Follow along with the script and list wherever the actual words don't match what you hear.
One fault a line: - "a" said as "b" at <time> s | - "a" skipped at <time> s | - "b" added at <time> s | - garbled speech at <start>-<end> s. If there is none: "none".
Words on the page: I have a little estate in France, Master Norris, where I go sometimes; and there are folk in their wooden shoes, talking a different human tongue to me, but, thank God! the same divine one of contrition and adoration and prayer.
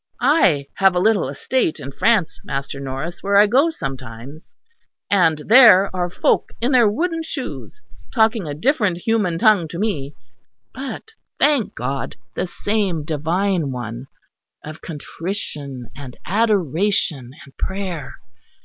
none